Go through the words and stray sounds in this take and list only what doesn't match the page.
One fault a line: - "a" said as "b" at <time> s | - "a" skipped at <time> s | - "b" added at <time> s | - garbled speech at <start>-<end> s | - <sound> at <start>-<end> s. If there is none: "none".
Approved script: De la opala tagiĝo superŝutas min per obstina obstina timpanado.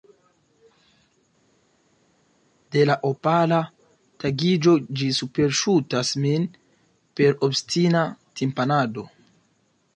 - "ĝi" added at 5.0 s
- "obstina" skipped at 8.1 s